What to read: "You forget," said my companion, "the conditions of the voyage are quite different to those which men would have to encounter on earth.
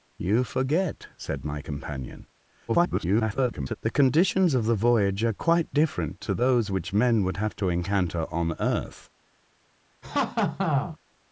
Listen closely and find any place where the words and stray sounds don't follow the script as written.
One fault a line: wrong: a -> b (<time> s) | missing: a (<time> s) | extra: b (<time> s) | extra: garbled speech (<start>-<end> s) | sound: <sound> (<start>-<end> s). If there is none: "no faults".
extra: garbled speech (2.7-3.8 s)
sound: laugh (10.0-11.0 s)